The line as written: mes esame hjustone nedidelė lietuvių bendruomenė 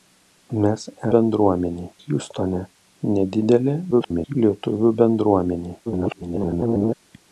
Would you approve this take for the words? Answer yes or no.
no